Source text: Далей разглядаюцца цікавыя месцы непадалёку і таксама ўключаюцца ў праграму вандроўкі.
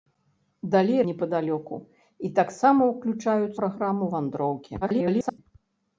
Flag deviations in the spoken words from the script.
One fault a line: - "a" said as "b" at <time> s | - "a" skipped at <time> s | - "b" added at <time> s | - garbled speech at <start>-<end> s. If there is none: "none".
- "разглядаюцца цікавыя месцы" skipped at 1.0 s
- "ў" skipped at 3.5 s
- garbled speech at 4.8-5.4 s